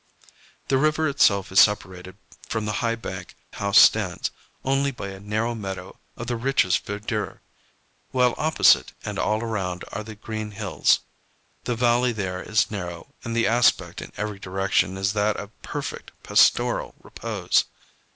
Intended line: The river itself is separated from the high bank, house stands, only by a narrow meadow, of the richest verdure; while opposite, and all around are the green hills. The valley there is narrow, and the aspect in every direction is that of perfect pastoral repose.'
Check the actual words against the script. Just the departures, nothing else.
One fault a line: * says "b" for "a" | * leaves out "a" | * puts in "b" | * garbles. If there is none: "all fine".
all fine